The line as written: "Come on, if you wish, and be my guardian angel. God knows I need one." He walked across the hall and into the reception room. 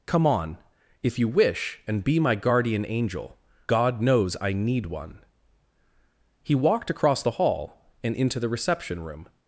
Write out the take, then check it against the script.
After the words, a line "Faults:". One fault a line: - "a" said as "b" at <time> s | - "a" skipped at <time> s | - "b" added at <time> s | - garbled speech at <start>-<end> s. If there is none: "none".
"Come on, if you wish, and be my guardian angel. God knows I need one." He walked across the hall and into the reception room.
Faults:
none